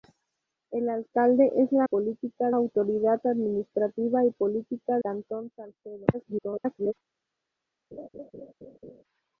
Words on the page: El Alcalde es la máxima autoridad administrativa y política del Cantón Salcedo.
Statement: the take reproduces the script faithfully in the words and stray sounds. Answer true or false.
false